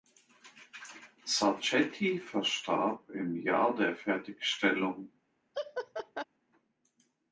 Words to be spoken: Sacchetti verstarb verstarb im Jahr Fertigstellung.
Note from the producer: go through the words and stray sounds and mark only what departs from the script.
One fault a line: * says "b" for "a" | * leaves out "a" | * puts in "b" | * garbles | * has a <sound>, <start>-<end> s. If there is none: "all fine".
* leaves out "verstarb"
* puts in "der"
* has a laugh, 5.5-6.3 s